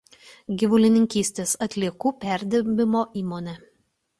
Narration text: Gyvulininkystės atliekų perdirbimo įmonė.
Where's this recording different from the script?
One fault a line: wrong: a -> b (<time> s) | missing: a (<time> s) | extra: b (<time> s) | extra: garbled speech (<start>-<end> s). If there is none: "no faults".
no faults